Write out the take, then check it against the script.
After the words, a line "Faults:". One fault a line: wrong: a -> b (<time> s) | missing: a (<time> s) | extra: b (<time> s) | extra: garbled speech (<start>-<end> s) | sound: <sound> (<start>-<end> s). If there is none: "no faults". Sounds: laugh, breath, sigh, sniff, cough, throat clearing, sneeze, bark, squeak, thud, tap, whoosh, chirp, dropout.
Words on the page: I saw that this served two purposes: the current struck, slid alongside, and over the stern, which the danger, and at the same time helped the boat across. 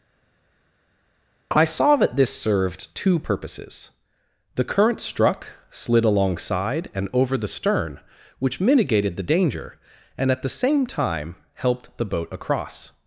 I saw that this served two purposes: the current struck, slid alongside, and over the stern, which mitigated the danger, and at the same time helped the boat across.
Faults:
extra: mitigated (8.6 s)